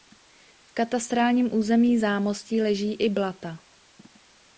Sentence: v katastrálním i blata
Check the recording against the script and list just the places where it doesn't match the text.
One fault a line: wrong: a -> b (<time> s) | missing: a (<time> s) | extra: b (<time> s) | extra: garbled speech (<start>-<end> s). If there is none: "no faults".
extra: území zámostí leží (1.5 s)